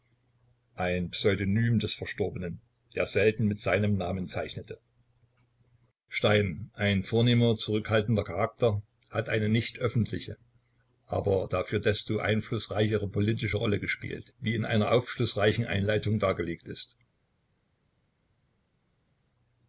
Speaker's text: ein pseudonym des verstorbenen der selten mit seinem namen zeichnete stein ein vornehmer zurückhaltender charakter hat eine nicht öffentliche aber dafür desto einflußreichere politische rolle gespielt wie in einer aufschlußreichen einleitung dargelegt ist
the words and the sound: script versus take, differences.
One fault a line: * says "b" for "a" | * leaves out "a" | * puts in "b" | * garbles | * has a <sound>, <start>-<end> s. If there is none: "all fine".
all fine